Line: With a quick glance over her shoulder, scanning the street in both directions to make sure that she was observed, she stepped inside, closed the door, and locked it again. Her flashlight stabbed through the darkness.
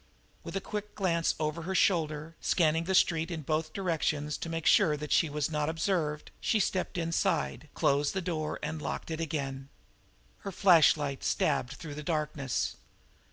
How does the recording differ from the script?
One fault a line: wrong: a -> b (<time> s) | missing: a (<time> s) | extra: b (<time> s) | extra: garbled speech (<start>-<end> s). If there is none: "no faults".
extra: not (5.5 s)